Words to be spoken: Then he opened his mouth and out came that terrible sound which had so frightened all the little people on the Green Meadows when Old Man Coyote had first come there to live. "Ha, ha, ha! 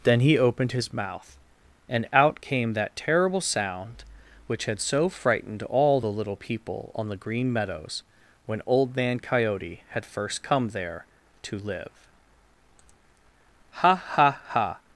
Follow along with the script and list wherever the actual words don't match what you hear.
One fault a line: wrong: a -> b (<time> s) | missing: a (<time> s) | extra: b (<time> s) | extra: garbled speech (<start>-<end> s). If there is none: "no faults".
no faults